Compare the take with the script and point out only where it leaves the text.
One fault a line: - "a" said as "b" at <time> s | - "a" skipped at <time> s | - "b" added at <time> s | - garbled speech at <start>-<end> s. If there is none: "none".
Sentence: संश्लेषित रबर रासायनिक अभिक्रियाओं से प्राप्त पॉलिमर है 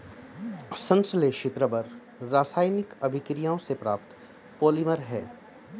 none